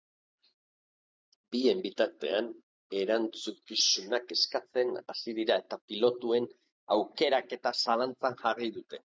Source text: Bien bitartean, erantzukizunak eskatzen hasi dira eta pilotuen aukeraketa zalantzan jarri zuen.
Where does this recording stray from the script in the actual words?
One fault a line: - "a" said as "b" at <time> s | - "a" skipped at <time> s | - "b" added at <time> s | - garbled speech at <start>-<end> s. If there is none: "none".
- "zuen" said as "dute" at 8.8 s